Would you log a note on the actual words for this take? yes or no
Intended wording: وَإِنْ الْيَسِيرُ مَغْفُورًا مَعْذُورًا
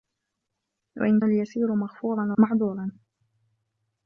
no